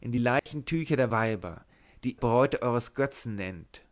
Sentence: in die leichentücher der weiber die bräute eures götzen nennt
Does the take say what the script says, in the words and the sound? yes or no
no